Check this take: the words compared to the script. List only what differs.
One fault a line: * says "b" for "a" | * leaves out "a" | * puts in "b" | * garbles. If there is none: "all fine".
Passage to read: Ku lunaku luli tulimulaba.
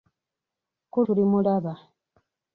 * leaves out "lunaku luli"